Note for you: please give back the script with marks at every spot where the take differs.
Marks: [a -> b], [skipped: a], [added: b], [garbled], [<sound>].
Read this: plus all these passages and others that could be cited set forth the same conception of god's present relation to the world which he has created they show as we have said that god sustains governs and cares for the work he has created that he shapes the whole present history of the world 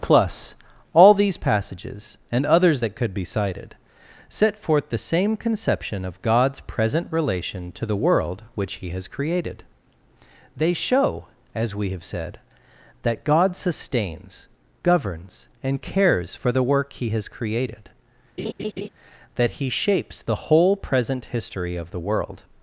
plus all these passages and others that could be cited set forth the same conception of god's present relation to the world which he has created they show as we have said that god sustains governs and cares for the work he has created [laugh] that he shapes the whole present history of the world